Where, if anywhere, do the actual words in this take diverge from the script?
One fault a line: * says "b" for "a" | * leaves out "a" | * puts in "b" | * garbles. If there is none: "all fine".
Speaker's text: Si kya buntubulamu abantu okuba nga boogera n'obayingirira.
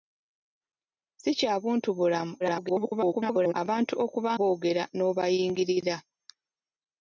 * garbles
* leaves out "nga"